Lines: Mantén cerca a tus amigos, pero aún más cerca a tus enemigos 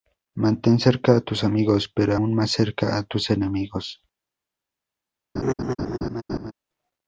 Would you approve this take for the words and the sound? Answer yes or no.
no